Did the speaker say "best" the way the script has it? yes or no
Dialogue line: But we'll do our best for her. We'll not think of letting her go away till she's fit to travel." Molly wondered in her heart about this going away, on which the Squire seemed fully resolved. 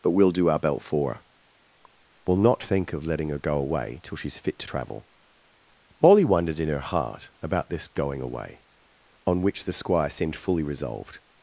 no